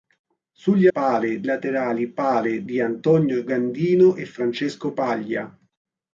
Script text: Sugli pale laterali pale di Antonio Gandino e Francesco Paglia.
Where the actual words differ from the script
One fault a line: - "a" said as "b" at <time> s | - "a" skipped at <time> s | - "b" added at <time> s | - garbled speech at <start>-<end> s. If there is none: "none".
none